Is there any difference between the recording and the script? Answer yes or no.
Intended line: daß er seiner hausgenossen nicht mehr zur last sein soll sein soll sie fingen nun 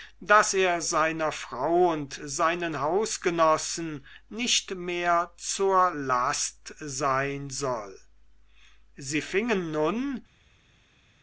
yes